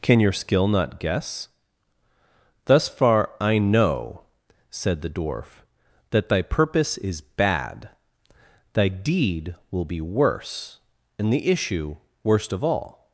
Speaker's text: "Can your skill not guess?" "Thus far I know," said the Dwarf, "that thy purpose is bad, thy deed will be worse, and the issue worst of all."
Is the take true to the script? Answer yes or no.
yes